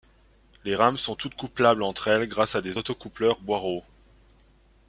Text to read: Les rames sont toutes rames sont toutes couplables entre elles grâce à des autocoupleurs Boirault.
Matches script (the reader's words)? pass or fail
fail